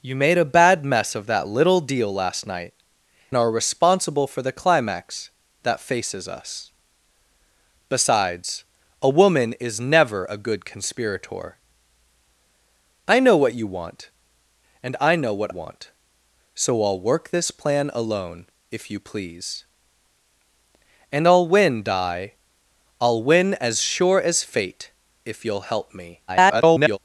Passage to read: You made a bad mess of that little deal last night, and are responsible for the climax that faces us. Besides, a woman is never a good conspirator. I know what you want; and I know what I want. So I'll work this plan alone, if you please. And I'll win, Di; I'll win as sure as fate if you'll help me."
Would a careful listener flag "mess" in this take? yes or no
no